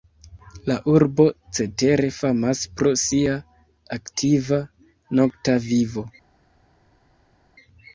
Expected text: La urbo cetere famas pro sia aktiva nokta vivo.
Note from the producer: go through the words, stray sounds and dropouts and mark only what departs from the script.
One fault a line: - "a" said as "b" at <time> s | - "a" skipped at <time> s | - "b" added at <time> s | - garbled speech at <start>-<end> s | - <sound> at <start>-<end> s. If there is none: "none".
none